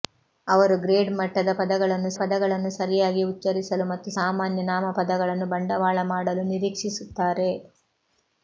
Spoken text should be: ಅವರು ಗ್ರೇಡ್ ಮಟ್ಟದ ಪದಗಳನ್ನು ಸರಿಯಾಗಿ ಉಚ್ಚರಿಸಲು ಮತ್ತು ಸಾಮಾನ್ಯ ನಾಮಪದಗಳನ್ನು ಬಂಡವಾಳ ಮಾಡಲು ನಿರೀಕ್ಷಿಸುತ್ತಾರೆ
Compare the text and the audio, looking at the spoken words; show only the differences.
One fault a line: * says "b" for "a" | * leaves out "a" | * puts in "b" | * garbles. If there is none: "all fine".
* puts in "ಪದಗಳನ್ನು"